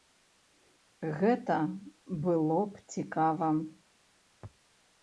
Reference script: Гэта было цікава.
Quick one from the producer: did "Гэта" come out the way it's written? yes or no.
yes